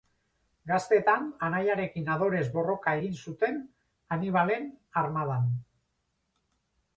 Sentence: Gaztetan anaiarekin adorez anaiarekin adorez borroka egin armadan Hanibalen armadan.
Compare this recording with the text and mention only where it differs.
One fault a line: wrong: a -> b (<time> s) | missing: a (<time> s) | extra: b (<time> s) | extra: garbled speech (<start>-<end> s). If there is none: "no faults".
missing: anaiarekin adorez (2.4 s)
wrong: armadan -> zuten (3.2 s)